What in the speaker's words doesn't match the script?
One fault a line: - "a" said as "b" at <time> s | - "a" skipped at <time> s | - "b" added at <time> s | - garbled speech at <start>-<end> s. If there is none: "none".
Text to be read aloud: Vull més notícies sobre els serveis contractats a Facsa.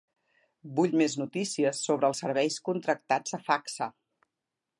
none